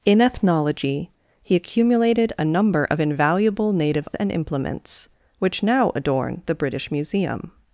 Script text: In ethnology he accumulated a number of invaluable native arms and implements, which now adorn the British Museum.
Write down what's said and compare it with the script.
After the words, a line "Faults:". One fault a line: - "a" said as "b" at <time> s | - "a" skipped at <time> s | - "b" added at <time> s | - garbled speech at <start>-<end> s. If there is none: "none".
In ethnology he accumulated a number of invaluable native and implements, which now adorn the British Museum.
Faults:
- "arms" skipped at 4.1 s